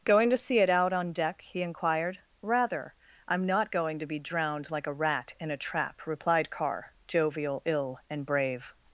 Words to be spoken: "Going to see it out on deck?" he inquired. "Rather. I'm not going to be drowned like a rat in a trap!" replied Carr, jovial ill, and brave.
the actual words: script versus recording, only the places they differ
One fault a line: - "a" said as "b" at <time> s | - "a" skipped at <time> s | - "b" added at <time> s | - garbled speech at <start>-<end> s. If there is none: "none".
none